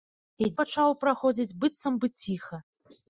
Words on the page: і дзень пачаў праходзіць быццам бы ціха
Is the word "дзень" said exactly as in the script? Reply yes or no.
no